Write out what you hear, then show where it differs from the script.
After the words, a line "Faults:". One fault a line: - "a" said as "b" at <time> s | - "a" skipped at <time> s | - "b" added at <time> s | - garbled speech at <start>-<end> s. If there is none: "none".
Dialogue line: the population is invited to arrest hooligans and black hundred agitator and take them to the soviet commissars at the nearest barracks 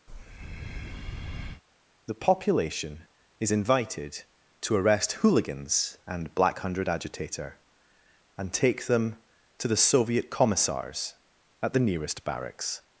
the population is invited to arrest hooligans and black hundred agitator and take them to the soviet commissars at the nearest barracks
Faults:
none